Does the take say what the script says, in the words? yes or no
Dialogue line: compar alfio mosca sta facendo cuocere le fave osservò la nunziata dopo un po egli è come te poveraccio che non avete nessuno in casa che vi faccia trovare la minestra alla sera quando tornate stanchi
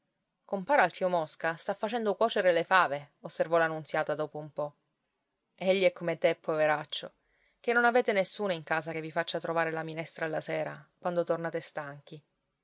yes